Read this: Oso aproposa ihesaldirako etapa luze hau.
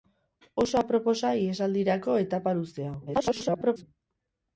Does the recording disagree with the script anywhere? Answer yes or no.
yes